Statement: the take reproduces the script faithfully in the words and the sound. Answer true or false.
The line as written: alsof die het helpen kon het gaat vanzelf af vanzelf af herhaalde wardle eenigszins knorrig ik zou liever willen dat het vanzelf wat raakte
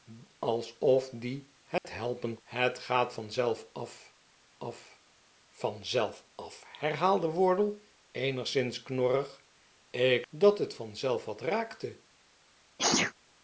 false